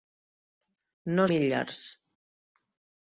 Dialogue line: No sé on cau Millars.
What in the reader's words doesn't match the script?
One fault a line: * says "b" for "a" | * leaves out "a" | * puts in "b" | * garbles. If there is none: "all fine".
* leaves out "sé on cau"